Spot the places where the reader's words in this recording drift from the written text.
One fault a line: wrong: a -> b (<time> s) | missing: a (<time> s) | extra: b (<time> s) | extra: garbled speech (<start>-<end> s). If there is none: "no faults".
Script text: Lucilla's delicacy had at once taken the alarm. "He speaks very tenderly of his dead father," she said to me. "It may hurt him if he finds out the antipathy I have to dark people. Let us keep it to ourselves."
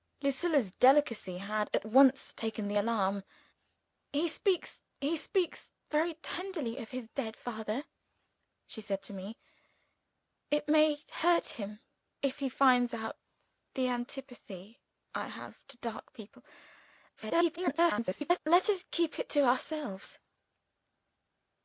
extra: he speaks (5.0 s)
extra: garbled speech (17.2-18.4 s)